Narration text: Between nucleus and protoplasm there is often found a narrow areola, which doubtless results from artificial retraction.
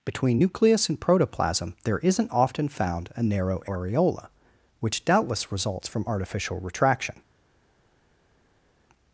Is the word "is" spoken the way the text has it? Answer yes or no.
no